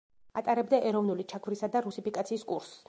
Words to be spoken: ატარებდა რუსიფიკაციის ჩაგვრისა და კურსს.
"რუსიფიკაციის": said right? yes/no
no